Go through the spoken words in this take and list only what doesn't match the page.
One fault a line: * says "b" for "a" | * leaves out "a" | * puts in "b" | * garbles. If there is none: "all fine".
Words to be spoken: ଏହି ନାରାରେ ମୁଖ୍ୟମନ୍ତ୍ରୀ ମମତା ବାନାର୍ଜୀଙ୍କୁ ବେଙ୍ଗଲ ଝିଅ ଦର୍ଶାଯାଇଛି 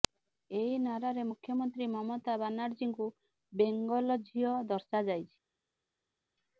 all fine